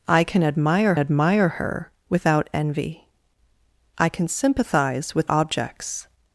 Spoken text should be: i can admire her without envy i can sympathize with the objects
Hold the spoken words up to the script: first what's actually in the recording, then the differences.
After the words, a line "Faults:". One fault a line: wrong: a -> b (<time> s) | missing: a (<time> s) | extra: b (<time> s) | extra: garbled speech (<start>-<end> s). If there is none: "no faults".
i can admire admire her without envy i can sympathize with objects
Faults:
extra: admire (1.0 s)
missing: the (5.3 s)